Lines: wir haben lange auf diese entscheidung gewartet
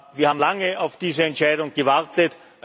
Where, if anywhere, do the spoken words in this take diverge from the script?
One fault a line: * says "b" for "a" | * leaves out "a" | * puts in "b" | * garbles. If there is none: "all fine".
all fine